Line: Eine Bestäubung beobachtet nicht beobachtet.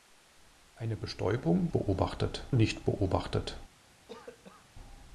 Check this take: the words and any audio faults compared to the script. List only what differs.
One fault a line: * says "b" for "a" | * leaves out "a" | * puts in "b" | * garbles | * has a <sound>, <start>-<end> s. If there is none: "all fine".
* has a cough, 4.1-4.7 s